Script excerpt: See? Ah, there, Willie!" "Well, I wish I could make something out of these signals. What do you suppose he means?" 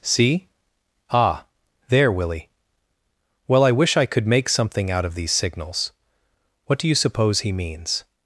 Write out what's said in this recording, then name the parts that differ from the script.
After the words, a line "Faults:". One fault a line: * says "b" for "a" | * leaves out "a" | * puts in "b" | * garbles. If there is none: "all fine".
See? Ah, there, Willie!" "Well, I wish I could make something out of these signals. What do you suppose he means?"
Faults:
all fine